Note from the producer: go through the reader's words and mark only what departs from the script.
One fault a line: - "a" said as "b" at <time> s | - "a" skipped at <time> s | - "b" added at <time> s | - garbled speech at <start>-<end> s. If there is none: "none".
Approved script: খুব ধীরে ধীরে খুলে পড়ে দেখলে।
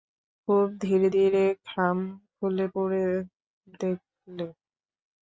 - "খাম" added at 1.7 s